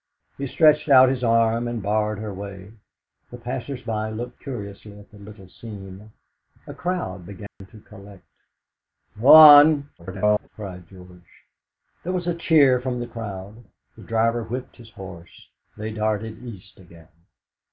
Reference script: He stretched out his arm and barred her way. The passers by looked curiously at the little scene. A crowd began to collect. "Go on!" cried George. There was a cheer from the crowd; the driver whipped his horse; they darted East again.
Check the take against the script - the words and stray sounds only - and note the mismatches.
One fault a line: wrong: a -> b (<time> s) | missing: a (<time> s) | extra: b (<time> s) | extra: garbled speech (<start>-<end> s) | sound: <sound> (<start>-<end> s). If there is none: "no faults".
sound: dropout (7.5-7.6 s)
extra: garbled speech (10.0-10.5 s)